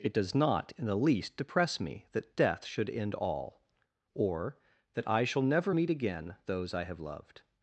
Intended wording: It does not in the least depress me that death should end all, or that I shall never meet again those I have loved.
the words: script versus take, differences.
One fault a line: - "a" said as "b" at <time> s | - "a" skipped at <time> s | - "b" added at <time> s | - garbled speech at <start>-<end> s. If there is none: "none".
none